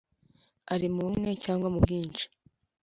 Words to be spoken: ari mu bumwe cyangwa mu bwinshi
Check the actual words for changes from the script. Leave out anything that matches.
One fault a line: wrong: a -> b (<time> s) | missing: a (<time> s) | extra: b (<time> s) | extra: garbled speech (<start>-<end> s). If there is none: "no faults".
no faults